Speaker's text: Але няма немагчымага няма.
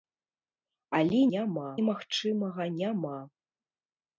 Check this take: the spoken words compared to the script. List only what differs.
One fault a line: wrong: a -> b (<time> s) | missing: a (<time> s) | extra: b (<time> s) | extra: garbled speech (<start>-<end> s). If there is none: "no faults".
no faults